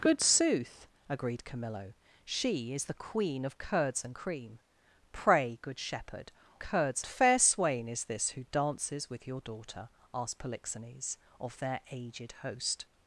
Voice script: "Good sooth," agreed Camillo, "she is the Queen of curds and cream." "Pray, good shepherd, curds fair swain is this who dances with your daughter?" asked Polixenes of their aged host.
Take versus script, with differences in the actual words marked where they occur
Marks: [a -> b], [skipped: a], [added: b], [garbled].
"Good sooth," agreed Camillo, "she is the Queen of curds and cream." "Pray, good shepherd, curds fair swain is this who dances with your daughter?" asked Polixenes of their aged host.